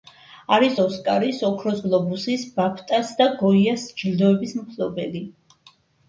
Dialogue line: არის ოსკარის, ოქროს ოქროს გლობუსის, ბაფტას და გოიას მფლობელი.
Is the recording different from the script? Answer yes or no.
yes